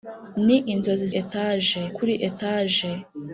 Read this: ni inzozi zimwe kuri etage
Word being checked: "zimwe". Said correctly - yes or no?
no